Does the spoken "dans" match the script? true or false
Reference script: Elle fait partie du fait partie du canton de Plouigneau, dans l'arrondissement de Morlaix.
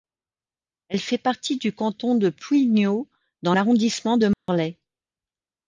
true